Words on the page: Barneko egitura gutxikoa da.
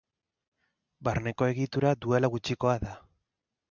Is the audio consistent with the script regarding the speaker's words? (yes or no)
no